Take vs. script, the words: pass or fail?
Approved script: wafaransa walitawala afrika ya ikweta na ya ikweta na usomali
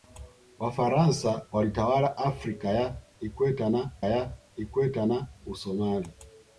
pass